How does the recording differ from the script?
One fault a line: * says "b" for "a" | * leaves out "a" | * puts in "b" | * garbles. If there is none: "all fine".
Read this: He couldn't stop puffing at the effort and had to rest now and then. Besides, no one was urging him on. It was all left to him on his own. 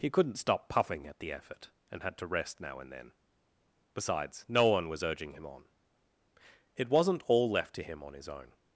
* says "wasn't" for "was"